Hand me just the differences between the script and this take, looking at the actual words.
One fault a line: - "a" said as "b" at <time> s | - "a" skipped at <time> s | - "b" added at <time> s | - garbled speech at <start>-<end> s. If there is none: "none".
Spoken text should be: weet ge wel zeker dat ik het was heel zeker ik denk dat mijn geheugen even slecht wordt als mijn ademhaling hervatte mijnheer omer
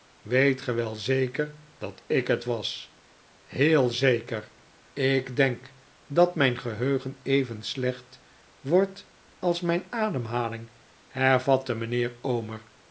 none